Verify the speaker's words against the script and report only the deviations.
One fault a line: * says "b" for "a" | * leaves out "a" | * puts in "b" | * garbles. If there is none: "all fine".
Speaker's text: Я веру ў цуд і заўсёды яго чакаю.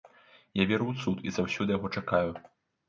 all fine